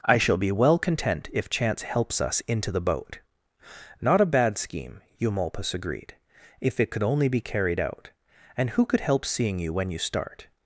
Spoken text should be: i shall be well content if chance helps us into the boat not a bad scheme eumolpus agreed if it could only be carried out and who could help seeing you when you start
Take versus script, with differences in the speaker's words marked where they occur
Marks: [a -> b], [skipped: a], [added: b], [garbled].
i shall be well content if chance helps us into the boat not a bad scheme eumolpus agreed if it could only be carried out and who could help seeing you when you start